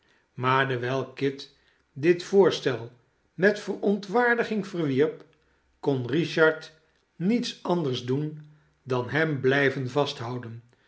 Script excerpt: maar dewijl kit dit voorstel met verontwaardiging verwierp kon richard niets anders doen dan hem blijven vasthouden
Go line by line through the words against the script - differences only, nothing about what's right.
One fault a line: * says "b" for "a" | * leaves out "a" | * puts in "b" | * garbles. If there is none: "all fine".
all fine